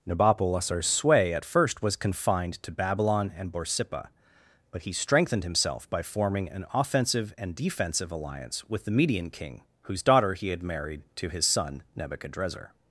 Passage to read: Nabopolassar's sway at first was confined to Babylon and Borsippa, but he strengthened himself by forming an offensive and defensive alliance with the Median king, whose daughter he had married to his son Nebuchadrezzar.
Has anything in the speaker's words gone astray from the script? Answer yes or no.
no